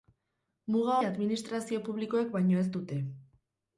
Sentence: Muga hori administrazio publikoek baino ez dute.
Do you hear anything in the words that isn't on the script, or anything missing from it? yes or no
yes